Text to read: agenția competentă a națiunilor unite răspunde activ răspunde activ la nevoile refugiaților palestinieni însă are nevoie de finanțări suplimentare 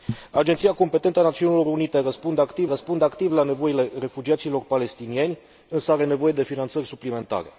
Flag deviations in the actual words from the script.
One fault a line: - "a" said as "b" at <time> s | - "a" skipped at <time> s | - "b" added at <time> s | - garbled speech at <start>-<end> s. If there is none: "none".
none